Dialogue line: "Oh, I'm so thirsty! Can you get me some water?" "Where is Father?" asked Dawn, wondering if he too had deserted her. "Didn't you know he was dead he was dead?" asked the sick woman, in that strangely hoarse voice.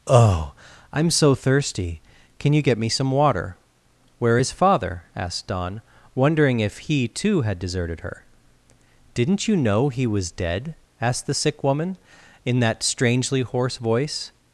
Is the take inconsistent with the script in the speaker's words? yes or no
yes